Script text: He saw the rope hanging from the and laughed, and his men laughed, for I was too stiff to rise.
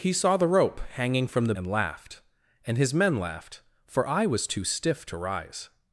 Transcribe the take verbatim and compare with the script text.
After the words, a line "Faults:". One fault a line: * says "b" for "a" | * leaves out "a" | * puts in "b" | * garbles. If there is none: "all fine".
He saw the rope hanging from the and laughed, and his men laughed, for I was too stiff to rise.
Faults:
all fine